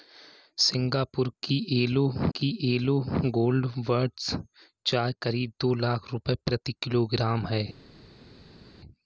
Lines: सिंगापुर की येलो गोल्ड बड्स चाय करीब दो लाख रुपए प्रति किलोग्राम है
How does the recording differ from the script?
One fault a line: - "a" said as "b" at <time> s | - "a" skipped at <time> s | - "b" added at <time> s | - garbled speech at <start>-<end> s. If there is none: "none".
- "की येलो" added at 2.4 s